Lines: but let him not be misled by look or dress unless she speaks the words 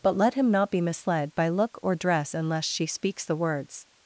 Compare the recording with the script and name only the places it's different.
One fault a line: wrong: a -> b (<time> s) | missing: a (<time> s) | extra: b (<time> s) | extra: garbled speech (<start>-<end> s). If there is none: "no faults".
no faults